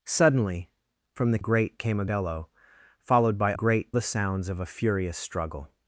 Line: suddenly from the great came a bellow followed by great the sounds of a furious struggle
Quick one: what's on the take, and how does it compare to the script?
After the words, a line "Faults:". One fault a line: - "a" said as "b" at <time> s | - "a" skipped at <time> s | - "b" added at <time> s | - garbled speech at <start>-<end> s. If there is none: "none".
suddenly from the great came a bellow followed by great the sounds of a furious struggle
Faults:
none